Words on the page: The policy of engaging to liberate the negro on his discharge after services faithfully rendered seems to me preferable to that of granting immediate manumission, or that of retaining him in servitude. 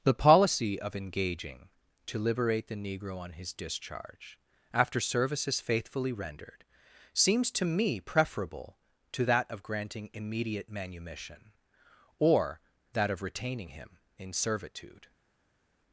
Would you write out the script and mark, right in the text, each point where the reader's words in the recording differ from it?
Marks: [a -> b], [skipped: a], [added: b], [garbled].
The policy of engaging to liberate the negro on his discharge after services faithfully rendered seems to me preferable to that of granting immediate manumission, or that of retaining him in servitude.